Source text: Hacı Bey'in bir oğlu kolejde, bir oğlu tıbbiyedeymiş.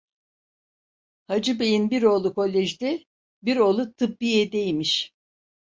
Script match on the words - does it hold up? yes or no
yes